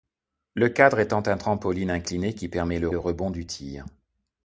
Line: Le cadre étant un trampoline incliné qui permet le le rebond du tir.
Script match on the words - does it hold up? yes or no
yes